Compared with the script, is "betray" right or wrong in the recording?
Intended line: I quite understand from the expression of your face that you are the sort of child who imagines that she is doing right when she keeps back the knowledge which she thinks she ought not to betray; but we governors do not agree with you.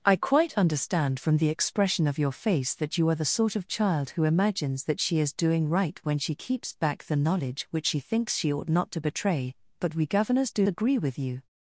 right